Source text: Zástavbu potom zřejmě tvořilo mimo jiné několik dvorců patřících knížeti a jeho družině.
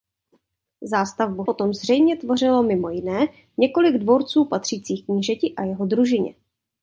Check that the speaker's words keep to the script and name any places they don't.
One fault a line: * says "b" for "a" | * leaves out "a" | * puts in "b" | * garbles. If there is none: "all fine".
all fine